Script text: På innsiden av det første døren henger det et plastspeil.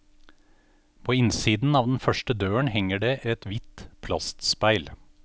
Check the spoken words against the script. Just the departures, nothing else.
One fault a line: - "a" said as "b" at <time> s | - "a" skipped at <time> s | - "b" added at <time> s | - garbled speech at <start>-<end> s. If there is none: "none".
- "det" said as "den" at 1.9 s
- "hvitt" added at 3.5 s